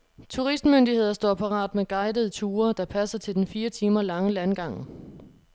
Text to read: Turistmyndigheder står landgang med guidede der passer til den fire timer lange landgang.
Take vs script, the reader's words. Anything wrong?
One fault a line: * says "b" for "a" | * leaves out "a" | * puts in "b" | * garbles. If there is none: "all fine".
* says "parat" for "landgang"
* puts in "ture"